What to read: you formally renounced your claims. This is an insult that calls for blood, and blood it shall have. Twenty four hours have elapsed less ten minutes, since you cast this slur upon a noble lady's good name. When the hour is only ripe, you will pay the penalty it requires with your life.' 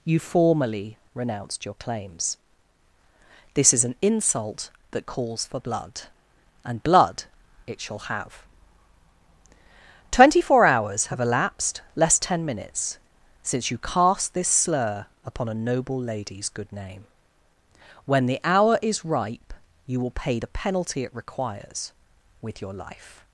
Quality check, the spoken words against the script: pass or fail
fail